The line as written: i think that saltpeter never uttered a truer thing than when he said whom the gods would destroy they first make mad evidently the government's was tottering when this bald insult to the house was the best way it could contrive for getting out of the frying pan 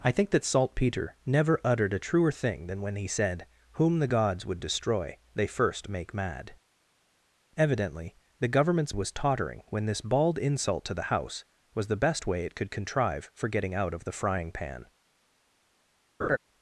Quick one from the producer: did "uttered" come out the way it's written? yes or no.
yes